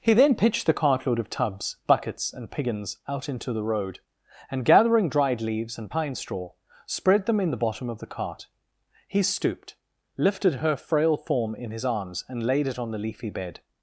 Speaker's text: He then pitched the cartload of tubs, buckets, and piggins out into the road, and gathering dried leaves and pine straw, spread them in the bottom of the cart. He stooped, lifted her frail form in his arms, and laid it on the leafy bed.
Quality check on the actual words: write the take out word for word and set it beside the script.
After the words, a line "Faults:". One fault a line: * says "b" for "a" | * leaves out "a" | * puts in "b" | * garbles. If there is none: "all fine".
He then pitched the cartload of tubs, buckets, and piggins out into the road, and gathering dried leaves and pine straw, spread them in the bottom of the cart. He stooped, lifted her frail form in his arms, and laid it on the leafy bed.
Faults:
all fine